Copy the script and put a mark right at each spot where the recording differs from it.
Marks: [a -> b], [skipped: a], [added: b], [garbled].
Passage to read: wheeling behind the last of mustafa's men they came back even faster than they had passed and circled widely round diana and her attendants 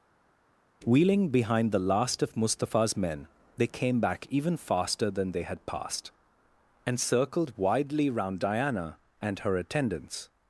wheeling behind the last of mustafa's men they came back even faster than they had passed and circled widely round diana and her attendants